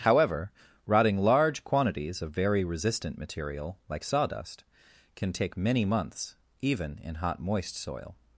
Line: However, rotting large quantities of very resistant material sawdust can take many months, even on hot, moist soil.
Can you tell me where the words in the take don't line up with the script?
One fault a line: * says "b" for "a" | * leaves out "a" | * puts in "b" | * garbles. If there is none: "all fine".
* puts in "like"
* says "in" for "on"